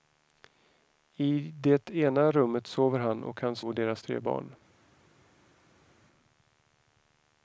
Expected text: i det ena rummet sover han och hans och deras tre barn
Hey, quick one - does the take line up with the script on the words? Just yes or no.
yes